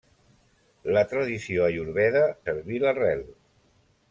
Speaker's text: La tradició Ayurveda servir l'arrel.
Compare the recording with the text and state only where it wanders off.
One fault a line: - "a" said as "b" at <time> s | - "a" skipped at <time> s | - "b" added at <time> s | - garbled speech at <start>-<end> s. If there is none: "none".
none